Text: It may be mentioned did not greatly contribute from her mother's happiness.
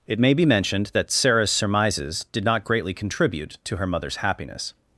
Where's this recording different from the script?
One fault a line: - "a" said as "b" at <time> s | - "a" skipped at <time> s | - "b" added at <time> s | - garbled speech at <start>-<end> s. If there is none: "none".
- "that Sarah's surmises" added at 0.9 s
- "from" said as "to" at 3.6 s